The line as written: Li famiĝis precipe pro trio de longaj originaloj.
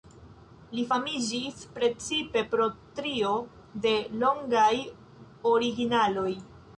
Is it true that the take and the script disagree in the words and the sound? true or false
false